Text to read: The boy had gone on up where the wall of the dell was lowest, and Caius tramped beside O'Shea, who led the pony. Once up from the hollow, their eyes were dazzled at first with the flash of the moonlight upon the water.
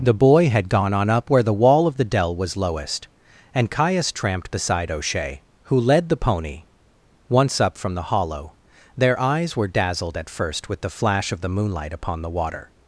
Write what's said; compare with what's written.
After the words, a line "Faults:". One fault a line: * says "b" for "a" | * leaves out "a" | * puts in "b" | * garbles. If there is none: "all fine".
The boy had gone on up where the wall of the dell was lowest, and Caius tramped beside O'Shea, who led the pony. Once up from the hollow, their eyes were dazzled at first with the flash of the moonlight upon the water.
Faults:
all fine